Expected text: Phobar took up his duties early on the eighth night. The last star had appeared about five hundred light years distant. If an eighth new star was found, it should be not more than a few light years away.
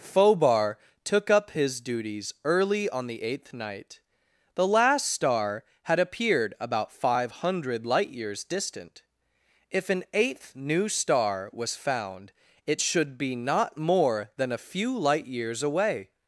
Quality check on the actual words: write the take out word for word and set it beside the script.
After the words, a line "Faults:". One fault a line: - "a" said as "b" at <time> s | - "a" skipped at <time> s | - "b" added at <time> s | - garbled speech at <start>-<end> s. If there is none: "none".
Phobar took up his duties early on the eighth night. The last star had appeared about five hundred light years distant. If an eighth new star was found, it should be not more than a few light years away.
Faults:
none